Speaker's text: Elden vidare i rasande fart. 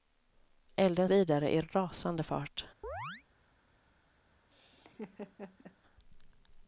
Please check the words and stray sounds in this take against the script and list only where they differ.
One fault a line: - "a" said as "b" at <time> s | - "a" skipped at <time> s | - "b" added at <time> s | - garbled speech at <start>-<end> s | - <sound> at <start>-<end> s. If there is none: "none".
- chirp at 2.8-3.2 s
- laugh at 4.5-5.8 s